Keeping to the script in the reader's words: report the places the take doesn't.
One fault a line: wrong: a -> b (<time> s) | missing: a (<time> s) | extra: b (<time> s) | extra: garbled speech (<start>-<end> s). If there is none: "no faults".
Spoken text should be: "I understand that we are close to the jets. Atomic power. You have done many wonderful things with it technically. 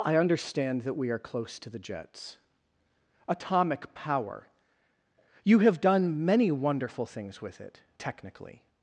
no faults